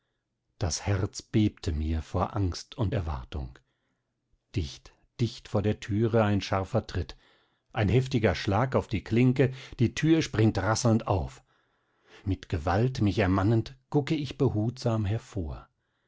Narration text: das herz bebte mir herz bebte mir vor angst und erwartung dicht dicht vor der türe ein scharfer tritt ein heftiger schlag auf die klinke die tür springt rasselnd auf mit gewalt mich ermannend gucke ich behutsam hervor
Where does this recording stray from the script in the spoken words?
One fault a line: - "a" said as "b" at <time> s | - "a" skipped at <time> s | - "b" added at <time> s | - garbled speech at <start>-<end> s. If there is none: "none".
- "herz bebte mir" skipped at 2.0 s